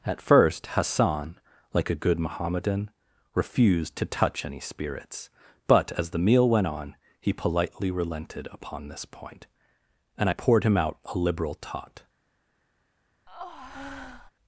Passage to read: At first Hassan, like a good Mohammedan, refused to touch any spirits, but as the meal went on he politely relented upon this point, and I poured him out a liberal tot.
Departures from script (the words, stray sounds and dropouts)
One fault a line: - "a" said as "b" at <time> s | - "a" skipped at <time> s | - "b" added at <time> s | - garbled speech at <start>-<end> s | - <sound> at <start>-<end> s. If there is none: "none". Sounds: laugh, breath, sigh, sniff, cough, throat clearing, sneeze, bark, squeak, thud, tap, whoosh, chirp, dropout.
- breath at 13.3-14.3 s